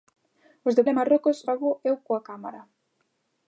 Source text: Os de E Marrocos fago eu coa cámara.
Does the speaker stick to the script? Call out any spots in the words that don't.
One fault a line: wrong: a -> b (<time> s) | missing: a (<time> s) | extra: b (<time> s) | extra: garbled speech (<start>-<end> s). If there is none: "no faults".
no faults